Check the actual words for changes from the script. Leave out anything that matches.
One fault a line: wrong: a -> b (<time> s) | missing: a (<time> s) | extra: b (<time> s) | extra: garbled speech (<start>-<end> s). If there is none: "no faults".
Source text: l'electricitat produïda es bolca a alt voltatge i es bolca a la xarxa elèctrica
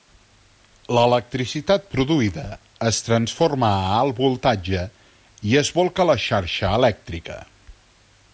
wrong: bolca -> transforma (3.1 s)